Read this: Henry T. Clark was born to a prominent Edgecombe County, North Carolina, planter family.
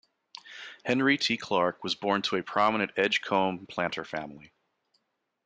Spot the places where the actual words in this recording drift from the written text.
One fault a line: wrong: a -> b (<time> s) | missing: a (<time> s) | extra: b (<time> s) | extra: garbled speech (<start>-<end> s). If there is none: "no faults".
missing: County North Carolina (3.7 s)